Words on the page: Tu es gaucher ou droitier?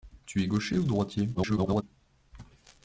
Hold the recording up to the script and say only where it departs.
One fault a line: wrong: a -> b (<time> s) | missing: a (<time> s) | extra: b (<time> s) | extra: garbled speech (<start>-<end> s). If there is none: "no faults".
extra: garbled speech (1.3-1.8 s)